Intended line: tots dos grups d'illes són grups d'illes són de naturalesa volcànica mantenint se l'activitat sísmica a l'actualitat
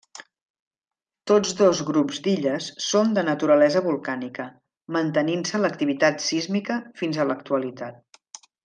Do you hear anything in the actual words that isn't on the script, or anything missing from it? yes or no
yes